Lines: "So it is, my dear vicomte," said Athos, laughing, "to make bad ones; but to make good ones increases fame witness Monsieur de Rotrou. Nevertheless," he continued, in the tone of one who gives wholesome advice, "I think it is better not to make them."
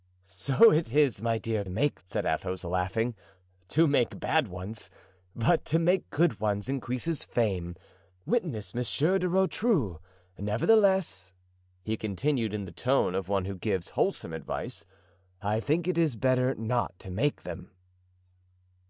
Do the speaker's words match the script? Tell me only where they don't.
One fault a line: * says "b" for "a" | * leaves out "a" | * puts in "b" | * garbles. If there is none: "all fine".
* says "make" for "vicomte"